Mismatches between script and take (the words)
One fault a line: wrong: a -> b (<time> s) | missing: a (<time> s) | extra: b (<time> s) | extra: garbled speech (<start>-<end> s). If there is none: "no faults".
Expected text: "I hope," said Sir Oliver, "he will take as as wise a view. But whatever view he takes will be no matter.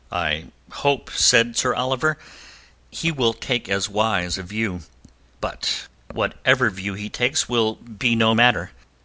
missing: as (3.9 s)